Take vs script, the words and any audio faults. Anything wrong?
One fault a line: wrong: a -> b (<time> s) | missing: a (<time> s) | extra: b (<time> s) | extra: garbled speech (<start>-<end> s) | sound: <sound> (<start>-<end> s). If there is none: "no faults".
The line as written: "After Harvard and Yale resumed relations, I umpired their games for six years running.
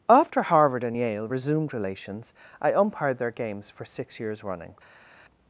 no faults